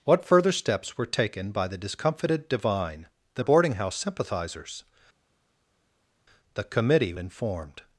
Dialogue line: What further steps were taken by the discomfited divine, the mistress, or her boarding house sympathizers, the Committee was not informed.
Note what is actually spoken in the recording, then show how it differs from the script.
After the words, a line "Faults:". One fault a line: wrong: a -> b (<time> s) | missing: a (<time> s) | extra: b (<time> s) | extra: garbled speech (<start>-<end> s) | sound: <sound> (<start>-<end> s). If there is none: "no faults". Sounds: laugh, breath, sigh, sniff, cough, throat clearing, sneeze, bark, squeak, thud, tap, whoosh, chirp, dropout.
What further steps were taken by the discomfited divine, the boarding house sympathizers, the Committee informed.
Faults:
missing: mistress or her (3.4 s)
missing: was not (7.1 s)